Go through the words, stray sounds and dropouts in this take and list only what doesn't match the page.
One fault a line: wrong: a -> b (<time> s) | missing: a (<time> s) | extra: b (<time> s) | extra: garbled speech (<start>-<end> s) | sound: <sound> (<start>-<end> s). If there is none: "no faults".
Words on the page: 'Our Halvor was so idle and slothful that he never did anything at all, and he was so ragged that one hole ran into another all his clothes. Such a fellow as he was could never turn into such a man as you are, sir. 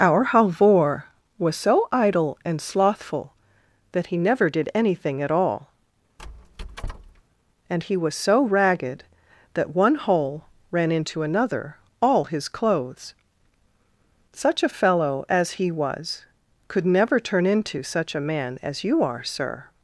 sound: squeak (6.2-7.2 s)